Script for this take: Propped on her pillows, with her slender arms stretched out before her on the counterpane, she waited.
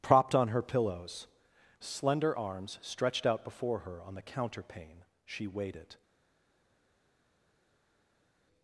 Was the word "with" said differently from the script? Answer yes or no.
yes